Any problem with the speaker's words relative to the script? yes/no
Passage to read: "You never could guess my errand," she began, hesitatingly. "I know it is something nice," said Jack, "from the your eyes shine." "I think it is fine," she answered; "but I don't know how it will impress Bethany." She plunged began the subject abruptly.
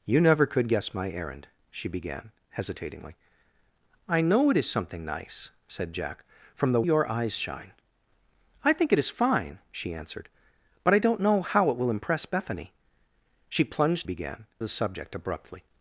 no